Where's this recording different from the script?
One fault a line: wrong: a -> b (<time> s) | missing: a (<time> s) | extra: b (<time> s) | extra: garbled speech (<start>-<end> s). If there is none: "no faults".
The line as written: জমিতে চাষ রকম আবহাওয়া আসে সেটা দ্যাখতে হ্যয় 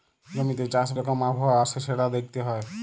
no faults